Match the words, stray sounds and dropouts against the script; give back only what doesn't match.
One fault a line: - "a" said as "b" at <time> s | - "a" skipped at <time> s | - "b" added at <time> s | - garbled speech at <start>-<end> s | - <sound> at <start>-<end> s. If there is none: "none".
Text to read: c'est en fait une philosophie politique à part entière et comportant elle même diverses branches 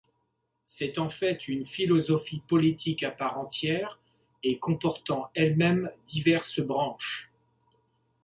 none